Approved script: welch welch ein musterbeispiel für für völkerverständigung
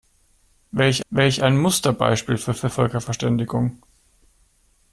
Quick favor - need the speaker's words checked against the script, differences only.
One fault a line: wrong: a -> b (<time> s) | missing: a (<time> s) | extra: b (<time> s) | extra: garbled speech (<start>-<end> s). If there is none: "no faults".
no faults